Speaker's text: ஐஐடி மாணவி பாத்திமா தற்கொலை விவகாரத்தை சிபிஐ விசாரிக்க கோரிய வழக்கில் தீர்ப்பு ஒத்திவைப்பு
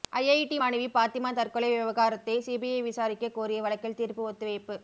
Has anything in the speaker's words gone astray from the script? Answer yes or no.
no